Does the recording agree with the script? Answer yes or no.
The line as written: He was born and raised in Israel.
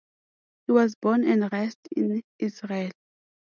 yes